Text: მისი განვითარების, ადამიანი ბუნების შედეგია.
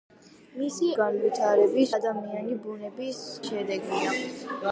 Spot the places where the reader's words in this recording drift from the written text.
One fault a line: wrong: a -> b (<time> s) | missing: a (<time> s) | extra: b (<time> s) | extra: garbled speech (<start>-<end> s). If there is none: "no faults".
no faults